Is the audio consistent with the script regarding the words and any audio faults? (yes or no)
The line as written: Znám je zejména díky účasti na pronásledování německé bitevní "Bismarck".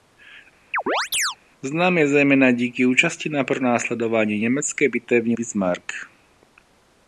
no